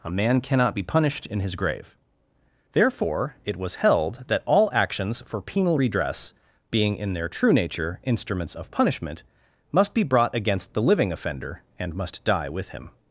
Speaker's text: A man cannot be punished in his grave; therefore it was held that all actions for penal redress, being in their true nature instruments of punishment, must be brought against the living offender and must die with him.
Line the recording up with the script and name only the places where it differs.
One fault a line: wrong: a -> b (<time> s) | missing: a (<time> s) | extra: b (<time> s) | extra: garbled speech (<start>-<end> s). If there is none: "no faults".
no faults